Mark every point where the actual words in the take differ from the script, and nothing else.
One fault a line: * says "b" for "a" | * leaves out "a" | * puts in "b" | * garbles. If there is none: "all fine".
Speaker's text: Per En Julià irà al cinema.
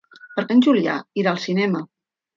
all fine